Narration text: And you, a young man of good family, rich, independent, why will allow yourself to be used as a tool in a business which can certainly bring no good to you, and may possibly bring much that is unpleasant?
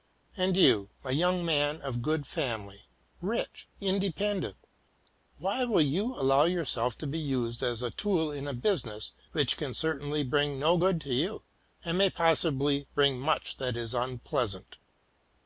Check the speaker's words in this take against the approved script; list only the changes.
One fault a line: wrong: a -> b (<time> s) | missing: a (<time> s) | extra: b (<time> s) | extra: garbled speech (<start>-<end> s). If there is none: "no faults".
extra: you (5.8 s)